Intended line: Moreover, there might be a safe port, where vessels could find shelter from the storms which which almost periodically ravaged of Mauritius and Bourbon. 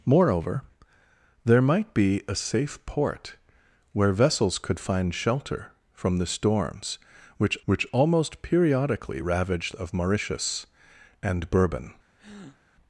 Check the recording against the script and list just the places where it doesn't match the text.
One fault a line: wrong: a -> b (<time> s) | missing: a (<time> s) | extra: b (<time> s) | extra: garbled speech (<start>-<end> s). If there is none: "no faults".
no faults